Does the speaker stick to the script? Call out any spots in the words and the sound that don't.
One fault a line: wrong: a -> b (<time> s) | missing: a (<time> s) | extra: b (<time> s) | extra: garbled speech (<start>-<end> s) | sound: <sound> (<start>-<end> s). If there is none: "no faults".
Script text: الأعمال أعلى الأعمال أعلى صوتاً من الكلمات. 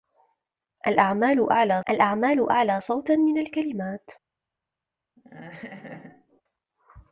sound: laugh (5.2-6.4 s)